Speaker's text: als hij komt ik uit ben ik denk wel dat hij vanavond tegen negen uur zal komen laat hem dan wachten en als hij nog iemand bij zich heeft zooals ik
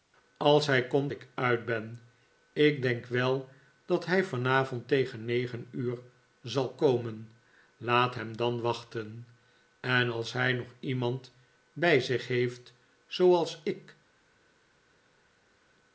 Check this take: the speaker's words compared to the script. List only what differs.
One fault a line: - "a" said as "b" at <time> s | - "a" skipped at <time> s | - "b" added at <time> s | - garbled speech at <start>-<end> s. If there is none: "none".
none